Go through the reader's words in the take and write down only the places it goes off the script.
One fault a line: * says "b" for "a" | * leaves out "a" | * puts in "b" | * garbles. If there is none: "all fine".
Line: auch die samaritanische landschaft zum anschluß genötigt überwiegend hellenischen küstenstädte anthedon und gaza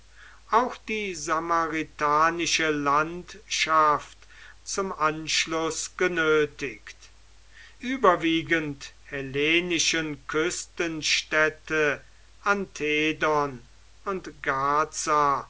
all fine